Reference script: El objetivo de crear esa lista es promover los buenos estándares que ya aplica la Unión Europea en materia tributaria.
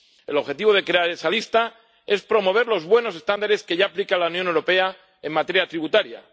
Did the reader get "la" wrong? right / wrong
right